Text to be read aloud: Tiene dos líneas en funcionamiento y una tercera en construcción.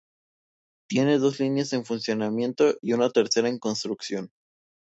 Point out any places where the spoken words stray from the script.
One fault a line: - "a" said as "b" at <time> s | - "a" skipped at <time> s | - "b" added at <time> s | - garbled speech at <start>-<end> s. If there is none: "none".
none